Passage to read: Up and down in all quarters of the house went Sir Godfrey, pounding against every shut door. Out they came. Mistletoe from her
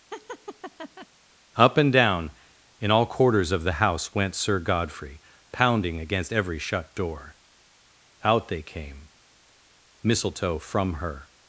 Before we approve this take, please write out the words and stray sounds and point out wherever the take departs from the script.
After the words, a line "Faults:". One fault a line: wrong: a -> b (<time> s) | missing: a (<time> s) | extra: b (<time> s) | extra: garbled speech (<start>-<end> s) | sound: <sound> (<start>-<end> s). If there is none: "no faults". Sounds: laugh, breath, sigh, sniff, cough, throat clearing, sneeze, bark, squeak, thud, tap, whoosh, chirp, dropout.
Up and down in all quarters of the house went Sir Godfrey, pounding against every shut door. Out they came. Mistletoe from her
Faults:
sound: laugh (0.1-1.1 s)